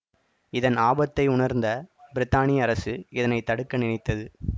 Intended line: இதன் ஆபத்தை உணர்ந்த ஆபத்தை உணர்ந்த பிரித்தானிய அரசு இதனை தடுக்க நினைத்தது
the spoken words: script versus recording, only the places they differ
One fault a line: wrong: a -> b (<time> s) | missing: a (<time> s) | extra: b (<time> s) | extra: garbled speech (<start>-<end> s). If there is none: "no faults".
missing: ஆபத்தை உணர்ந்த (1.7 s)